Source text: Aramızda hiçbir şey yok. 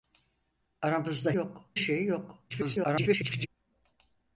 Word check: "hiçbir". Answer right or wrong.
wrong